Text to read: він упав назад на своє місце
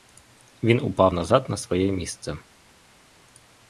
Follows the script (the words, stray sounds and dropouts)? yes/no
yes